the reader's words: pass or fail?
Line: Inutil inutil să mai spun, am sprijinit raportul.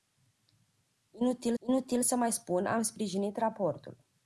pass